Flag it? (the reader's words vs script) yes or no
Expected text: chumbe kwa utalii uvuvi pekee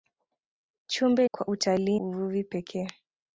no